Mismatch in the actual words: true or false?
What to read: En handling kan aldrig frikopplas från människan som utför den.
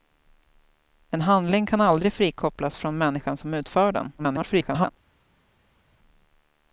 true